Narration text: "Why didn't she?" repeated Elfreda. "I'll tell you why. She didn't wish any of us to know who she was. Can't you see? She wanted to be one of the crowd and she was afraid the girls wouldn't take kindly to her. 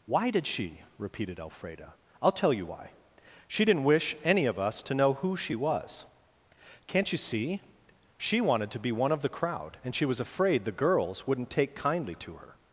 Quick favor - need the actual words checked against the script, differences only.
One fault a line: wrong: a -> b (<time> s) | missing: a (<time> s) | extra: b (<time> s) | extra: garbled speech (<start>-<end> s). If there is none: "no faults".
wrong: didn't -> did (0.3 s)